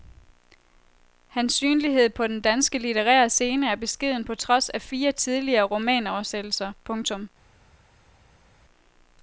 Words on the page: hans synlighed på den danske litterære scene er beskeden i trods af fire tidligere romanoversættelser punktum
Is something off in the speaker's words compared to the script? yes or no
yes